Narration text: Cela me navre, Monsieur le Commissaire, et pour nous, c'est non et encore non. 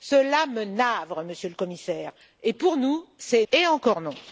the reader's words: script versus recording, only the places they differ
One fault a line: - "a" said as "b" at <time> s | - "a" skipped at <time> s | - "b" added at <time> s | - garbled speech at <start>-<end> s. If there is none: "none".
- "non" skipped at 3.5 s